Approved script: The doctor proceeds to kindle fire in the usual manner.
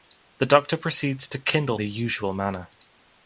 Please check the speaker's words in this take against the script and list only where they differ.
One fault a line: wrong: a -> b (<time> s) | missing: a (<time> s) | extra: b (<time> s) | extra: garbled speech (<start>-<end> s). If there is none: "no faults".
missing: fire in (1.8 s)